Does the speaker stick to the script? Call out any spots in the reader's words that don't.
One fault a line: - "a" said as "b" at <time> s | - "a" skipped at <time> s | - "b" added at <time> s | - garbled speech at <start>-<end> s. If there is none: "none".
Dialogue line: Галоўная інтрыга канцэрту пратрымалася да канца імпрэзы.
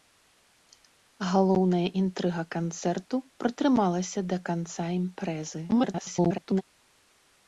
- garbled speech at 5.7-6.6 s